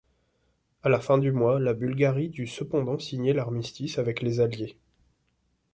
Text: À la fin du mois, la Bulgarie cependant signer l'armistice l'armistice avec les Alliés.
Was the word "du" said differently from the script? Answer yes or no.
no